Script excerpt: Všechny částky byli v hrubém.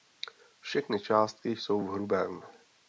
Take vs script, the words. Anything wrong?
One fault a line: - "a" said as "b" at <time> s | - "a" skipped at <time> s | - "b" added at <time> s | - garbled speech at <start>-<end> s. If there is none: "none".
- "byli" said as "jsou" at 1.5 s